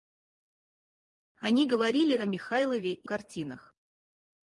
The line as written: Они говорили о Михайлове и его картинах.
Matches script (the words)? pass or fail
fail